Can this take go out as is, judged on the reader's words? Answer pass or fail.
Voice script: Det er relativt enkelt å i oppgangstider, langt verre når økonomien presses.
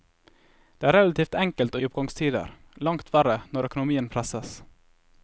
pass